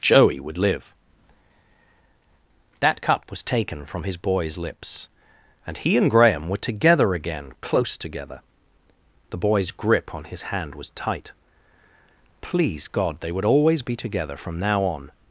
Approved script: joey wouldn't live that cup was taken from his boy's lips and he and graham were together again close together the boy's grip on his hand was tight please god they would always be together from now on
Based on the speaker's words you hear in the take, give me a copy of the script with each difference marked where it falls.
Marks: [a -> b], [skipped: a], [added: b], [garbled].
joey [wouldn't -> would] live that cup was taken from his boy's lips and he and graham were together again close together the boy's grip on his hand was tight please god they would always be together from now on